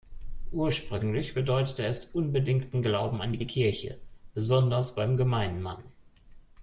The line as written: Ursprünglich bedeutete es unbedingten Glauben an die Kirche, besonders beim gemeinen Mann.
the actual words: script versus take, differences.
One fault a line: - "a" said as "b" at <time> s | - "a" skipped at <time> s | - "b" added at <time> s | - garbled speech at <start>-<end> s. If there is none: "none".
- "die" added at 3.4 s